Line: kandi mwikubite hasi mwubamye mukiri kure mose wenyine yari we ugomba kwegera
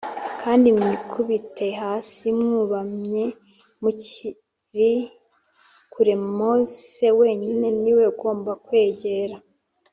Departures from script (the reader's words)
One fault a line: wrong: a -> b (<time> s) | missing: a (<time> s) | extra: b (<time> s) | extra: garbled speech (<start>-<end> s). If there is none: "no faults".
wrong: yari -> ni (7.8 s)